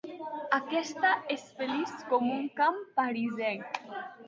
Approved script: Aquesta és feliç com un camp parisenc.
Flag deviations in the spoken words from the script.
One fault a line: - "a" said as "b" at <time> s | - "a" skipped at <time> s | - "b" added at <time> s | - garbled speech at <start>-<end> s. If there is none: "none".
none